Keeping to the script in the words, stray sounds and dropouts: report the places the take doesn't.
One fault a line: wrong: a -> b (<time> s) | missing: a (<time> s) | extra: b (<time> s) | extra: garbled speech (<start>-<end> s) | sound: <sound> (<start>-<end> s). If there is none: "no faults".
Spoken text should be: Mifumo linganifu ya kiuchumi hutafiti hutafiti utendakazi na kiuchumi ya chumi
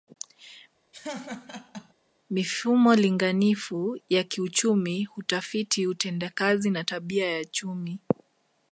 sound: laugh (0.9-1.9 s)
missing: hutafiti (5.9 s)
wrong: kiuchumi -> tabia (6.8 s)